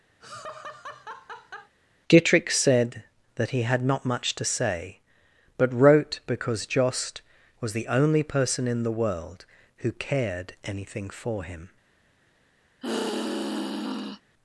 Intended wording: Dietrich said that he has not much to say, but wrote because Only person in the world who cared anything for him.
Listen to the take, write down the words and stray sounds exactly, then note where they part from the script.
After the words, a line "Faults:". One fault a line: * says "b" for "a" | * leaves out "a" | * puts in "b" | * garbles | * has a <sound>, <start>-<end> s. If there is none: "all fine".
Dietrich said that he had not much to say, but wrote because Jost was the only person in the world who cared anything for him.
Faults:
* has a laugh, 0.2-1.7 s
* says "had" for "has"
* puts in "Jost was the"
* has a sigh, 12.8-14.2 s